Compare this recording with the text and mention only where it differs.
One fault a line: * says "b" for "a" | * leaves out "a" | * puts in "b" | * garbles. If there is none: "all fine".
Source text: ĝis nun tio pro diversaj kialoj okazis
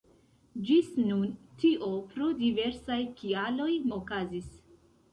all fine